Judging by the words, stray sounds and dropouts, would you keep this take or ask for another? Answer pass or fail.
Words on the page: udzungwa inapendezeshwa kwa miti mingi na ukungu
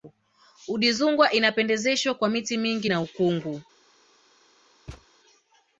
fail